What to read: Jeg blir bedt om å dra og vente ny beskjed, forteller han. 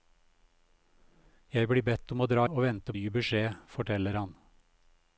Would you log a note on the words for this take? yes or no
no